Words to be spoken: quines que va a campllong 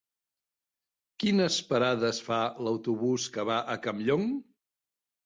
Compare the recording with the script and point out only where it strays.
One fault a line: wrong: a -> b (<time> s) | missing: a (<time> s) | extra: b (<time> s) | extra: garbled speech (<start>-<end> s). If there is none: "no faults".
extra: parades fa l'autobús (1.7 s)